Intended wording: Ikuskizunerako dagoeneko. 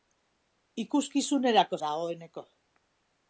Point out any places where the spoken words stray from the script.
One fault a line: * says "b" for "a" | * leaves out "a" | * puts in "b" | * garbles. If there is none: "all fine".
all fine